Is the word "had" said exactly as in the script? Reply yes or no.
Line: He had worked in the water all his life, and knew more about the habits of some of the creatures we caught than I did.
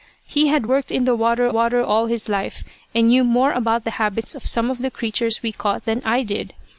yes